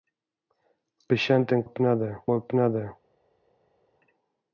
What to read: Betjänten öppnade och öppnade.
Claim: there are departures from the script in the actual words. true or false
false